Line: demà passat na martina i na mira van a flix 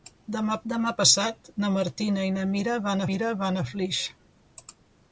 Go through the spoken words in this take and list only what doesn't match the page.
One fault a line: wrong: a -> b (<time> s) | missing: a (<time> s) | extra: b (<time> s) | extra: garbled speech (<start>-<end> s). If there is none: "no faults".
extra: demà (0.7 s)
extra: mira van (3.1 s)